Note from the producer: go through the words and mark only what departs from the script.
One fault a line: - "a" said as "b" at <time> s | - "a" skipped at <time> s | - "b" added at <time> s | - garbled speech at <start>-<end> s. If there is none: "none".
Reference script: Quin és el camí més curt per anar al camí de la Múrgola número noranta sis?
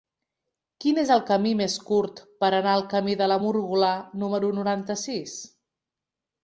none